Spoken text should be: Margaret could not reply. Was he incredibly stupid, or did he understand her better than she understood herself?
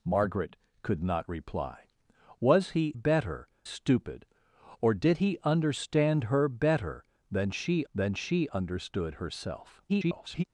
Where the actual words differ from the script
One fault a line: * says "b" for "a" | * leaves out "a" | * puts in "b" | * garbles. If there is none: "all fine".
* says "better" for "incredibly"
* puts in "than she"
* garbles